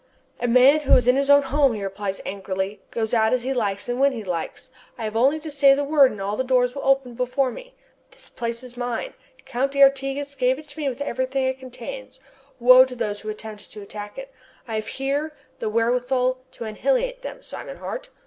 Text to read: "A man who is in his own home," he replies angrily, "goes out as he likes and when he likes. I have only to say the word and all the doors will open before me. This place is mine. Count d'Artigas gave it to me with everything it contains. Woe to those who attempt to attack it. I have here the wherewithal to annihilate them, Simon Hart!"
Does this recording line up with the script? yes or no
yes